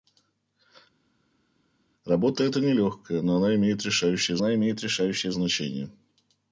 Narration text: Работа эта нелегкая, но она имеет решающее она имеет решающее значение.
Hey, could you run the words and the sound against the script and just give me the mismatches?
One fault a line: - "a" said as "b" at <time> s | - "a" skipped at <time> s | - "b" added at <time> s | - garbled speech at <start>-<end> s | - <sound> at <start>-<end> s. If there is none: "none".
none